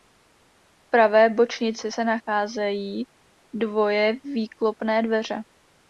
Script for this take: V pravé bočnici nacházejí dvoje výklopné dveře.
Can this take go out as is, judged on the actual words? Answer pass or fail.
fail